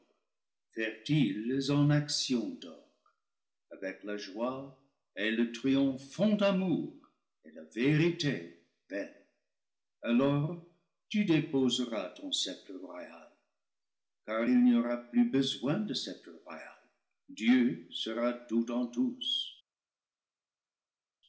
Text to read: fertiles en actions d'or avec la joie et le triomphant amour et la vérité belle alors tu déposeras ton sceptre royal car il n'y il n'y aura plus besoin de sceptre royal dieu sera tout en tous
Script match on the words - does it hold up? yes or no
no